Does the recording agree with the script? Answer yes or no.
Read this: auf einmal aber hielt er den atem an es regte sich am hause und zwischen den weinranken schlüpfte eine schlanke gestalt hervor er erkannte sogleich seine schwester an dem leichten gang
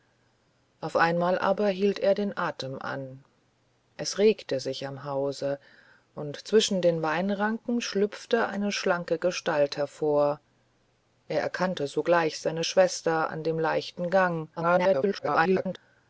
no